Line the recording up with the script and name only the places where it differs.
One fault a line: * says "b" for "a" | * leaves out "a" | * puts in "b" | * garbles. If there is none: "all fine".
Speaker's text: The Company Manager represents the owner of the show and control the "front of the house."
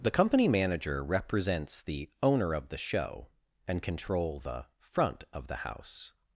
all fine